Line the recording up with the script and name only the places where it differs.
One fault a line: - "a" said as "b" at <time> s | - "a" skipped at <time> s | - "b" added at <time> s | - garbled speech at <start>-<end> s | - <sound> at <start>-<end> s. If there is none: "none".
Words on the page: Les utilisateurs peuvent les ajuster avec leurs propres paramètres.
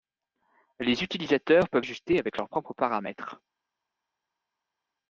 - "les" skipped at 1.9 s